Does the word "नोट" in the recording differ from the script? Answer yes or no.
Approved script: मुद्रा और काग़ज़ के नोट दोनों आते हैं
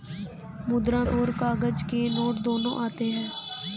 no